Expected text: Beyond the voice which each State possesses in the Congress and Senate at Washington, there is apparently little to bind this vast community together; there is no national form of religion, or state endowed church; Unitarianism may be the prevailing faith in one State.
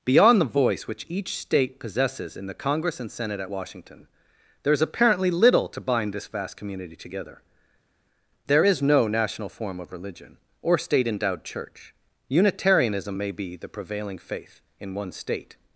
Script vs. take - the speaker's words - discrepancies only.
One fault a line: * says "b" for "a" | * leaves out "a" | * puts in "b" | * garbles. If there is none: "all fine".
all fine